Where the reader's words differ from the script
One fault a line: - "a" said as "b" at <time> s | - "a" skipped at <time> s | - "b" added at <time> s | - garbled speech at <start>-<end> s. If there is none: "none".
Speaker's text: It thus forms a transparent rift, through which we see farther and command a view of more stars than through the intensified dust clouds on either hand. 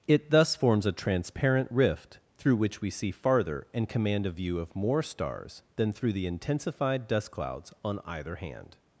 none